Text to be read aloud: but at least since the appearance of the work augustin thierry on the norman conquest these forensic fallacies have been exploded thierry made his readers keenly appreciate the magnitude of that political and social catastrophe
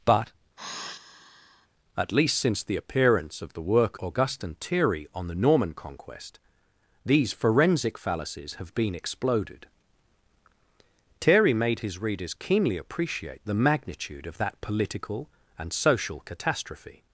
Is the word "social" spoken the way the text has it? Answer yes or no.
yes